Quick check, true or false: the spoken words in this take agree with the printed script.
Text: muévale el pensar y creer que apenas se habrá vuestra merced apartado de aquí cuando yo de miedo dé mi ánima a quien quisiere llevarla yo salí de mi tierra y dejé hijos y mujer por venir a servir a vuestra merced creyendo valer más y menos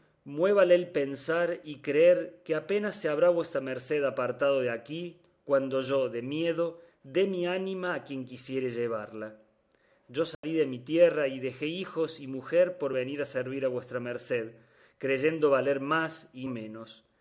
true